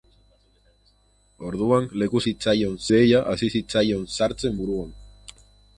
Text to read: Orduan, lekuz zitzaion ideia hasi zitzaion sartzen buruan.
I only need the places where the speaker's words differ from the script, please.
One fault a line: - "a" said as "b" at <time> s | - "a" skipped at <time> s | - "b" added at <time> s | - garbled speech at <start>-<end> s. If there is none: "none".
none